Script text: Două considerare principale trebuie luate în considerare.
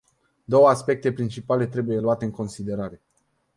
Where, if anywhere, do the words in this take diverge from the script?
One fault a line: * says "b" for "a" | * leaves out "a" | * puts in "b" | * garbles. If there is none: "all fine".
* says "aspecte" for "considerare"